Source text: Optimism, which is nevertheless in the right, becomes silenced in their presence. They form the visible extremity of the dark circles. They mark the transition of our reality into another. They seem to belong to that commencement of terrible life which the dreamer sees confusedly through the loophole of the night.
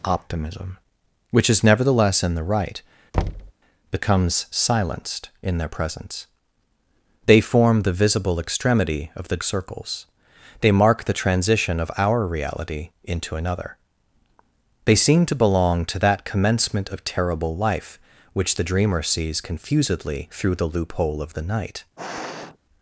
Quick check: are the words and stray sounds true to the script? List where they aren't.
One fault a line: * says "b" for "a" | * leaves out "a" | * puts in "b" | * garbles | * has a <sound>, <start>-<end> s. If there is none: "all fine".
* has a thud, 3.1-3.5 s
* leaves out "dark"
* has a sniff, 22.0-22.6 s